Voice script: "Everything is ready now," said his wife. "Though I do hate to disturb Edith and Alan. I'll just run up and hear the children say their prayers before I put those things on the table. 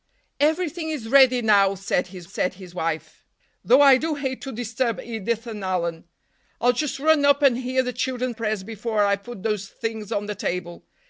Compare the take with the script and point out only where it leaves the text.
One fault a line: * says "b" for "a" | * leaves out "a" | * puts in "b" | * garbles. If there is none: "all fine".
* puts in "said his"
* leaves out "say their"